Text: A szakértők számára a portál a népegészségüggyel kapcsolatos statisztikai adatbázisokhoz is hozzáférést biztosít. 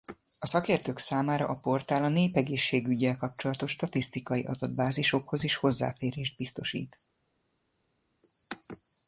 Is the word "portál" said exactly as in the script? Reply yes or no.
yes